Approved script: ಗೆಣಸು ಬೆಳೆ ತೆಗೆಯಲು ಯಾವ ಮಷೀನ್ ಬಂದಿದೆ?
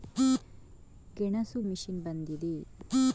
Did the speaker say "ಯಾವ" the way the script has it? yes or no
no